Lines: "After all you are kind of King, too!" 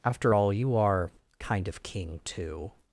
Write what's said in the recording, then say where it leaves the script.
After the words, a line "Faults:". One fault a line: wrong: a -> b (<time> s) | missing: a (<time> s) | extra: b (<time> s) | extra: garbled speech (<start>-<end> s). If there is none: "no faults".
"After all you are kind of King, too!"
Faults:
no faults